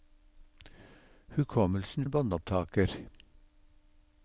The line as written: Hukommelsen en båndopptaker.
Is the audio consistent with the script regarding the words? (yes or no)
yes